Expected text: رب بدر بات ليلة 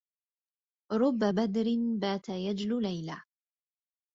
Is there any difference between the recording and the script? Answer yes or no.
yes